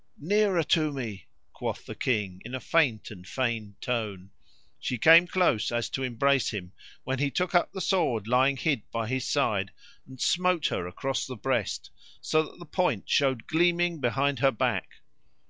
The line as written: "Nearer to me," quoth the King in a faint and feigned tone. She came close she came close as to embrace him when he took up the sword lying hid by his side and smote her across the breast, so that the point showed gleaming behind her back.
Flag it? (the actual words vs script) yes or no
yes